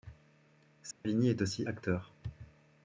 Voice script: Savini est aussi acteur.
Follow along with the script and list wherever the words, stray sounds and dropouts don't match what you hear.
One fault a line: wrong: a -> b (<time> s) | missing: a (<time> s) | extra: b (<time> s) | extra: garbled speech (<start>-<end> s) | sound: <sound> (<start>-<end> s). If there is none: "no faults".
sound: dropout (0.9-1.0 s)